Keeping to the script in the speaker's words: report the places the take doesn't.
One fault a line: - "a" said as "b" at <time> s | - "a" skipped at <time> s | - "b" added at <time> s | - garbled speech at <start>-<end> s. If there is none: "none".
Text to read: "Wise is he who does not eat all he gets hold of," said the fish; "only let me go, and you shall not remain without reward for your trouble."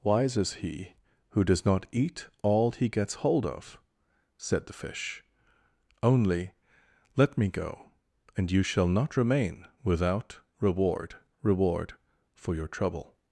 - "reward" added at 11.4 s